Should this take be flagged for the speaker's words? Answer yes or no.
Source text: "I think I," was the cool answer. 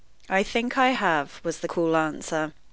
yes